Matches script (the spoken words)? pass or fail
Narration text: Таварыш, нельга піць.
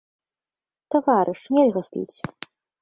pass